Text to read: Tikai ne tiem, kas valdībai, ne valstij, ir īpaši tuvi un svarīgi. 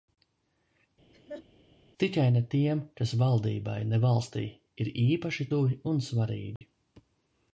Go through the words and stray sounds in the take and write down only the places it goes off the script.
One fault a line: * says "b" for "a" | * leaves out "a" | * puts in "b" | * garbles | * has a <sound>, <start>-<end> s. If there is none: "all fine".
* has a laugh, 1.1-1.5 s
* has a dropout, 6.6-6.6 s